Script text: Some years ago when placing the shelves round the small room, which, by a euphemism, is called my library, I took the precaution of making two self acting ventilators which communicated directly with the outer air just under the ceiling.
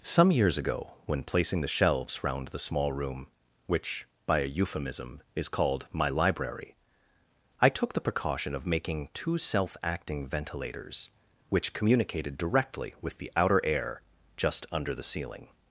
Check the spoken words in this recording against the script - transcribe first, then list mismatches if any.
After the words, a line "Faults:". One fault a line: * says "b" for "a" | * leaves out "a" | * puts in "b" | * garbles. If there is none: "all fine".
Some years ago when placing the shelves round the small room, which, by a euphemism, is called my library, I took the precaution of making two self acting ventilators which communicated directly with the outer air just under the ceiling.
Faults:
all fine